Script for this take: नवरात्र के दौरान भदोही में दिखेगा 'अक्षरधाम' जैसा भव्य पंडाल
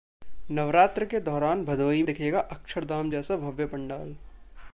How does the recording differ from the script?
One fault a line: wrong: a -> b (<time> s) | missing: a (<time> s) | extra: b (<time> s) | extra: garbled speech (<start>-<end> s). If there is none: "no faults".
missing: में (2.0 s)